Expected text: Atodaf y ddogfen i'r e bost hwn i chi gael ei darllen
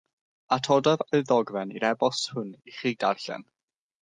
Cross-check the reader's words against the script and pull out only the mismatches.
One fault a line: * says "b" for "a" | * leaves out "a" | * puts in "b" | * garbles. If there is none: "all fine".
* leaves out "gael"